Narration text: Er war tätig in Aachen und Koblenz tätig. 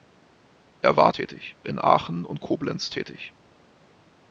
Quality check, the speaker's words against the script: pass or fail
pass